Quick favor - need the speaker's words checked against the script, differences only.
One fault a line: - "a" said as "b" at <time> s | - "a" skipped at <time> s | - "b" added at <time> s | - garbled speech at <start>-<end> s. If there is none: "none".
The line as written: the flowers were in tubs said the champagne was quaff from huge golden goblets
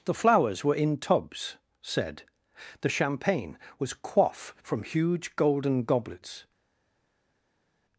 none